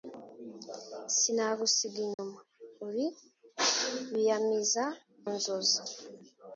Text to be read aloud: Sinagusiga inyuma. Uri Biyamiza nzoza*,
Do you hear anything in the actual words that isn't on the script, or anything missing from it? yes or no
no